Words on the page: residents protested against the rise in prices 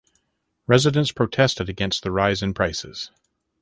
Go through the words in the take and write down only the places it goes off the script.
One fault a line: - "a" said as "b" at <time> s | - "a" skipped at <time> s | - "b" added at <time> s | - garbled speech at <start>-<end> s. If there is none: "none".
none